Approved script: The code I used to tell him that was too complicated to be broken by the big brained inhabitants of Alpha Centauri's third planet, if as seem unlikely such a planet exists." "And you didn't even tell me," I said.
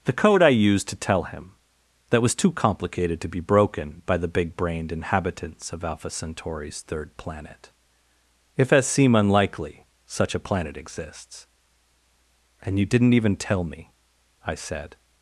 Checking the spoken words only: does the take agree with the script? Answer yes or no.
yes